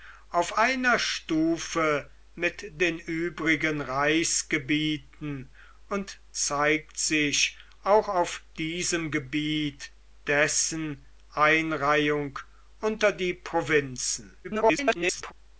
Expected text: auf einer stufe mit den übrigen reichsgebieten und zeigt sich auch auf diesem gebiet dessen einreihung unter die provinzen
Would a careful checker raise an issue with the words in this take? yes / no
yes